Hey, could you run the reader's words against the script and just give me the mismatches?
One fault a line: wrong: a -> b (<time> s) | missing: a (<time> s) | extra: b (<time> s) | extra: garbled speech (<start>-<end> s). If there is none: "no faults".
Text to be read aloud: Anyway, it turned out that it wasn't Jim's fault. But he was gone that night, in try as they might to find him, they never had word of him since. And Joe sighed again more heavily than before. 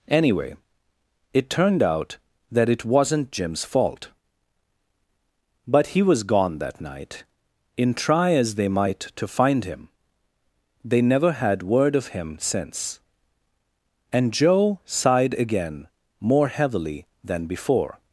no faults